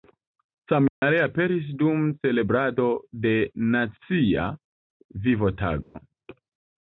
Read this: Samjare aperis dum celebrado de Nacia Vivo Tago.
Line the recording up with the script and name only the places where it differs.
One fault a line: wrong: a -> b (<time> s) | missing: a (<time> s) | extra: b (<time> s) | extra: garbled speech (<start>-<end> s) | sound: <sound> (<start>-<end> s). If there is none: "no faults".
sound: dropout (0.9-1.0 s)
sound: dropout (5.8-5.9 s)